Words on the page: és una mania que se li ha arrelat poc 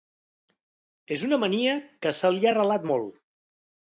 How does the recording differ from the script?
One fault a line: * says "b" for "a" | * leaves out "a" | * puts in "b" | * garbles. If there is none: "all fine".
* says "molt" for "poc"